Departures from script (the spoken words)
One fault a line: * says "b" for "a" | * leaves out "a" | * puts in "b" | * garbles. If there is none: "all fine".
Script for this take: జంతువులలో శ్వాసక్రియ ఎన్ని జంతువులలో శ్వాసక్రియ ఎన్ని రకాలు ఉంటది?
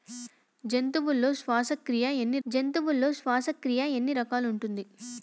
all fine